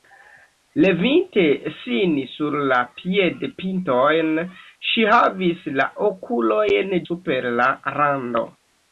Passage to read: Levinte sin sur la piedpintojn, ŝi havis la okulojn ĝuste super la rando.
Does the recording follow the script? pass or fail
fail